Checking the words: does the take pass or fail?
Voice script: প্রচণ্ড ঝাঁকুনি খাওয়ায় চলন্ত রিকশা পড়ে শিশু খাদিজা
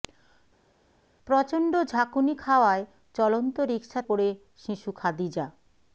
pass